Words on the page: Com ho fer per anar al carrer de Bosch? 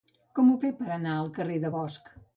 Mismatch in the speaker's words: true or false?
false